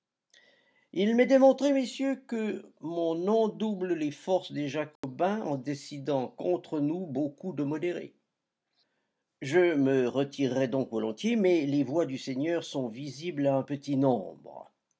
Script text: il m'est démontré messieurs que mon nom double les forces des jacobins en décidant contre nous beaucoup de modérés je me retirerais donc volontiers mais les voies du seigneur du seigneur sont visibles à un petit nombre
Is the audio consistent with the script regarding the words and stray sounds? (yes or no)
no